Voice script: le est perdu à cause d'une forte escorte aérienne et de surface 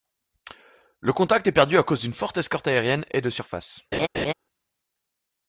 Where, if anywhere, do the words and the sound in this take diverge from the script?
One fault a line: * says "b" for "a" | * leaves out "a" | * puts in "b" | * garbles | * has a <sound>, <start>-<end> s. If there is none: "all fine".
* puts in "contact"
* has a laugh, 3.9-4.3 s